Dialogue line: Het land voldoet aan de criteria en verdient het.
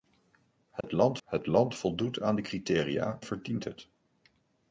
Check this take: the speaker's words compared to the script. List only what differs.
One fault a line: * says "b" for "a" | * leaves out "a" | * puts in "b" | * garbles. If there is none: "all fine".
* puts in "het land"
* leaves out "en"